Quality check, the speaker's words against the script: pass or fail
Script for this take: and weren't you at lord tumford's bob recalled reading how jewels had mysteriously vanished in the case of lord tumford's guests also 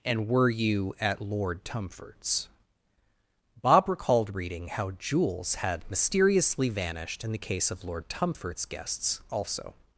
fail